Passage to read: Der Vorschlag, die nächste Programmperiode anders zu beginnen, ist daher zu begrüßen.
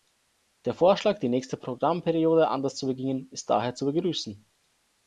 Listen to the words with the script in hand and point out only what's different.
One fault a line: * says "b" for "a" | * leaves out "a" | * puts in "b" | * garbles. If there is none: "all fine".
all fine